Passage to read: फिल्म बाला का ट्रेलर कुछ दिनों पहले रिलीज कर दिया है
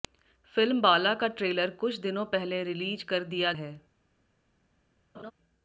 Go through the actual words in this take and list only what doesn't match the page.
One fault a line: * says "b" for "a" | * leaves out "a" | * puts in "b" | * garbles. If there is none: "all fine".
all fine